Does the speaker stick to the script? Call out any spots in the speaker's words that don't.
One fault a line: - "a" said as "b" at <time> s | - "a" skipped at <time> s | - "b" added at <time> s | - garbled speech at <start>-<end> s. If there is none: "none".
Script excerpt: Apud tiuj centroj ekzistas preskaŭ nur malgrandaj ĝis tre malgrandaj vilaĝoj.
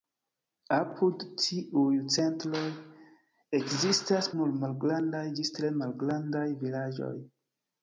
- "preskaŭ" skipped at 4.3 s